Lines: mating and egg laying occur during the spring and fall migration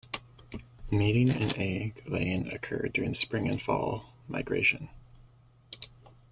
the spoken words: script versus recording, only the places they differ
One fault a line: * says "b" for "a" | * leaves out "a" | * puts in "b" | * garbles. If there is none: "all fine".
all fine